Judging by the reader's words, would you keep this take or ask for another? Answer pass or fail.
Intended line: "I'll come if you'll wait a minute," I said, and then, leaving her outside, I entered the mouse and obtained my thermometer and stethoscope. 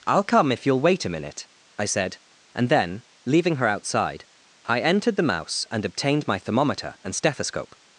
pass